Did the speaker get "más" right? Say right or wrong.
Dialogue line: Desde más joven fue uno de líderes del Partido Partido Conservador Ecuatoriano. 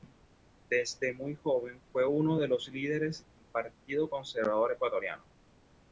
wrong